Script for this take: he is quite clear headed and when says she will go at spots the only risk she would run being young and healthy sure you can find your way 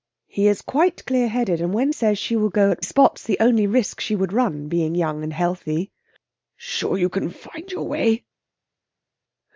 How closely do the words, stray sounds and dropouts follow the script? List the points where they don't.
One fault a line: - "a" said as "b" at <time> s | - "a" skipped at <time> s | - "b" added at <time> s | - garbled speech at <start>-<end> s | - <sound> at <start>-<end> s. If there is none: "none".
none